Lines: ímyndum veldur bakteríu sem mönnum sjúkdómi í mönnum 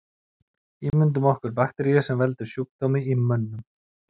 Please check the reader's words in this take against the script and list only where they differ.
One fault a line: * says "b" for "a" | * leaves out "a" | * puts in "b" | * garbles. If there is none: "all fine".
* says "okkur" for "veldur"
* says "veldur" for "mönnum"